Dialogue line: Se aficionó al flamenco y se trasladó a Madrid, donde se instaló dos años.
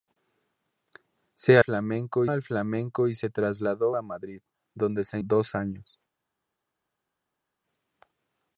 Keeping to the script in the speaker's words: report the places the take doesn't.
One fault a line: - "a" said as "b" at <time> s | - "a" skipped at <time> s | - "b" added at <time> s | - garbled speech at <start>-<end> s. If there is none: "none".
- "aficionó" said as "flamenco" at 1.6 s
- "instaló" skipped at 5.2 s